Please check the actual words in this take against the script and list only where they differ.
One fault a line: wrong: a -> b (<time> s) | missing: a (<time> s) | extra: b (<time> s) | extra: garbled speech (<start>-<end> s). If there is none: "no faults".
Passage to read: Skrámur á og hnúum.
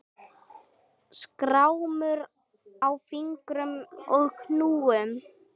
extra: fingrum (3.1 s)